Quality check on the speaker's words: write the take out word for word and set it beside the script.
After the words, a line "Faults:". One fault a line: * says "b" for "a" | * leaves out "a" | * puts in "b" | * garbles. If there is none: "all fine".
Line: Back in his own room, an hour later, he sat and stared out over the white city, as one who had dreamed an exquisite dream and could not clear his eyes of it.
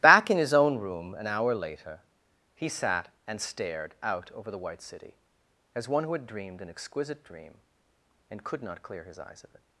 Back in his own room, an hour later, he sat and stared out over the white city, as one who had dreamed an exquisite dream and could not clear his eyes of it.
Faults:
all fine